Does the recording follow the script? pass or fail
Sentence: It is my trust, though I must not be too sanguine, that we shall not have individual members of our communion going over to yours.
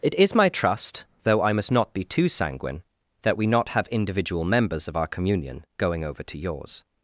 fail